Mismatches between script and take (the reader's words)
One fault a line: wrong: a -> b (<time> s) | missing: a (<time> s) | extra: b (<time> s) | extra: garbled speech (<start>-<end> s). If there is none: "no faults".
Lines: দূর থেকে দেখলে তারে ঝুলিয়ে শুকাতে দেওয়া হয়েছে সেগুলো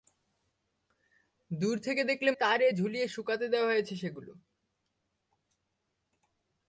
no faults